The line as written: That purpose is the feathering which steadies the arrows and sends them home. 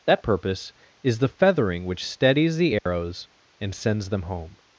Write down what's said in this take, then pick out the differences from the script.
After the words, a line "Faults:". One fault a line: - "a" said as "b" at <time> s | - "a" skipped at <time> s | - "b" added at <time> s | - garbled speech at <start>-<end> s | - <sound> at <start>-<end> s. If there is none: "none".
That purpose is the feathering which steadies the arrows and sends them home.
Faults:
- dropout at 2.8-2.9 s